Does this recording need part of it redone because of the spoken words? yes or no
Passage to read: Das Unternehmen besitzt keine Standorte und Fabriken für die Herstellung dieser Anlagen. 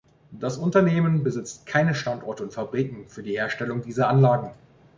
no